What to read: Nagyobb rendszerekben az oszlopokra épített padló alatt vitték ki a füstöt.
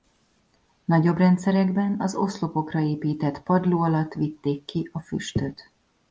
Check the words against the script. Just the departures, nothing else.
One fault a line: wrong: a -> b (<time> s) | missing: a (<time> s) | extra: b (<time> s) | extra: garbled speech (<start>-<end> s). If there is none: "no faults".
no faults